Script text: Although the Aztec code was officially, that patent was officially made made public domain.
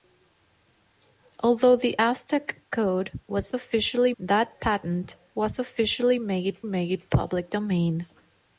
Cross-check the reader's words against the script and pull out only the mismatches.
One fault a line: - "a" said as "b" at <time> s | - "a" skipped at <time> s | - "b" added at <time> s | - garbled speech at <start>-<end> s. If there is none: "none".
none